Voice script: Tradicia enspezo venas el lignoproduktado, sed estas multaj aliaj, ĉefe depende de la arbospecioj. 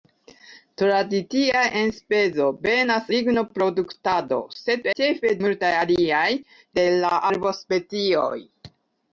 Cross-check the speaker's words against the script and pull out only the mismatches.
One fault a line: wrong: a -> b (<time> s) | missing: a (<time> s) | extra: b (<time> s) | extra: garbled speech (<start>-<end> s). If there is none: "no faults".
missing: el (3.1 s)
wrong: estas -> ĉefe (5.0 s)
missing: ĉefe depende (6.3 s)